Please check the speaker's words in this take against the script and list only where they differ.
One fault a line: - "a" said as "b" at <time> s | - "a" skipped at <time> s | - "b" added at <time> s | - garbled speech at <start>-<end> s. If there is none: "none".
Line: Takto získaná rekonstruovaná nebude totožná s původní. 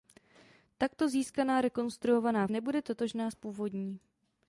none